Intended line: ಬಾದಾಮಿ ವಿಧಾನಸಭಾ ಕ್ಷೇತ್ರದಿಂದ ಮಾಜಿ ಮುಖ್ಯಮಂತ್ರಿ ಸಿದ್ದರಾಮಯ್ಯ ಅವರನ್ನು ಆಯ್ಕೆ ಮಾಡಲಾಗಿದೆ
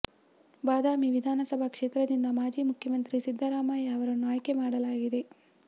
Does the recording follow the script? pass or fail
pass